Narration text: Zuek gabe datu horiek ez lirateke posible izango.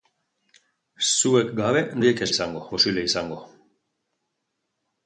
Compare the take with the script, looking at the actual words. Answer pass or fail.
fail